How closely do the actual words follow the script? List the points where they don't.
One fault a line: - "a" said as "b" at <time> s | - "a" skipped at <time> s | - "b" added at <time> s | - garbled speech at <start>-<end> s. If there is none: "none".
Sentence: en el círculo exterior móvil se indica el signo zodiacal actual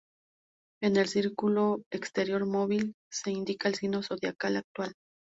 none